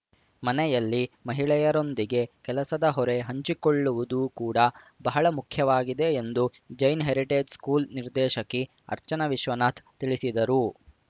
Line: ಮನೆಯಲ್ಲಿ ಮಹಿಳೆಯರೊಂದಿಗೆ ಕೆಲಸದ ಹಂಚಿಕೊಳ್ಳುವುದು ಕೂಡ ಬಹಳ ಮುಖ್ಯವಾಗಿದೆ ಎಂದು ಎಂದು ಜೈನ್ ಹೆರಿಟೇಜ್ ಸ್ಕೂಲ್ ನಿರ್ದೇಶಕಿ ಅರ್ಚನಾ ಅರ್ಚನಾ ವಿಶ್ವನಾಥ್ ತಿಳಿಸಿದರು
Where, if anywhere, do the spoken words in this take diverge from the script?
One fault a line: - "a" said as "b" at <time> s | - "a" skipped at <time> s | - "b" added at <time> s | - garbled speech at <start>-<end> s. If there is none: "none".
- "ಹೊರೆ" added at 2.9 s
- "ಎಂದು" skipped at 6.5 s
- "ಅರ್ಚನಾ" skipped at 9.3 s